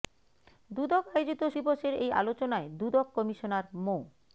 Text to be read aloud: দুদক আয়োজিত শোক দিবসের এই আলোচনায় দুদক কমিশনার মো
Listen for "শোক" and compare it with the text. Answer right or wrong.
wrong